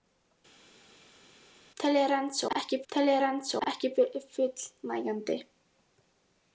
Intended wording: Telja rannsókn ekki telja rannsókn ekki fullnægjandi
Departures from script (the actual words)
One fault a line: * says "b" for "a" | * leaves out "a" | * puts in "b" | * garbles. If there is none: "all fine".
all fine